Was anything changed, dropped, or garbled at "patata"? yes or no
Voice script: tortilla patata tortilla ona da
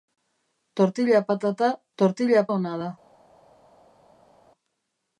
no